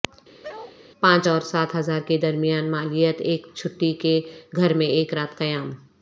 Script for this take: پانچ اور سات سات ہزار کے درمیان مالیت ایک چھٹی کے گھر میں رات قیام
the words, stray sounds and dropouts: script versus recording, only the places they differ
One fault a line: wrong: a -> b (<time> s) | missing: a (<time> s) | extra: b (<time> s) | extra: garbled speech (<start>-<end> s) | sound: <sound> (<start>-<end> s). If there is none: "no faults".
sound: bark (0.4-0.8 s)
missing: سات (1.7 s)
extra: ایک (4.9 s)